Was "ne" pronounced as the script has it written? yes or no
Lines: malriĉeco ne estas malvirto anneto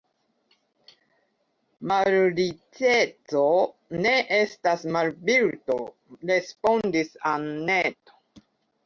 yes